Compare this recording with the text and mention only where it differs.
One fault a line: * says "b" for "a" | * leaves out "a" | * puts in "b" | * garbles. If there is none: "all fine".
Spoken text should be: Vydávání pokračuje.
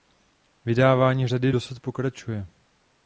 * puts in "řady dosud"